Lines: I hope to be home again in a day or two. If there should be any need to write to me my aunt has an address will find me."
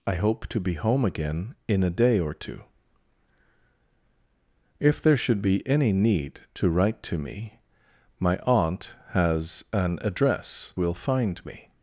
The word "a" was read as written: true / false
true